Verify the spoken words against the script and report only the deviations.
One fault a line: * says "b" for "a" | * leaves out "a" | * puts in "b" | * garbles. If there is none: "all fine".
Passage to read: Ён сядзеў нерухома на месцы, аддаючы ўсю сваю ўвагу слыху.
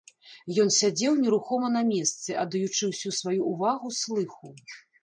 all fine